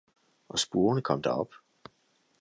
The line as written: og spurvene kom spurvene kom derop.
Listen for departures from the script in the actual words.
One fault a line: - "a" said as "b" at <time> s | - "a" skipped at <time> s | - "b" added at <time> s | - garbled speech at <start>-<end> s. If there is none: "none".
- "spurvene kom" skipped at 1.2 s